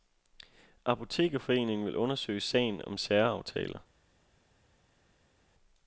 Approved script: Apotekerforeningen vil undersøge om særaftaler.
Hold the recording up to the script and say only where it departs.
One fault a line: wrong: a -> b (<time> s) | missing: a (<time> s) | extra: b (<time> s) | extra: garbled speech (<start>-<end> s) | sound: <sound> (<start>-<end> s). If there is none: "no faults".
extra: sagen (2.4 s)